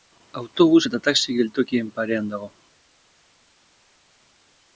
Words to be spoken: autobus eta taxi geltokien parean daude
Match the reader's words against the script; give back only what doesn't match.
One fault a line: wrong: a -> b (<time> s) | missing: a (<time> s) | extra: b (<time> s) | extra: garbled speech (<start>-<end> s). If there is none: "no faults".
wrong: daude -> dago (2.4 s)